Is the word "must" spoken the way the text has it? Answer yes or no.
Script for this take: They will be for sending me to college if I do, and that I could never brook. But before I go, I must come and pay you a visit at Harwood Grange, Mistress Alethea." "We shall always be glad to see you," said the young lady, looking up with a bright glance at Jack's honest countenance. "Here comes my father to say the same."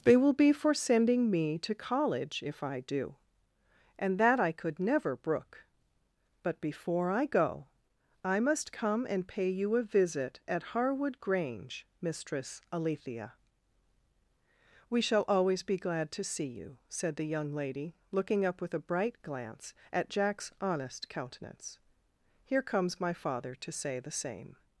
yes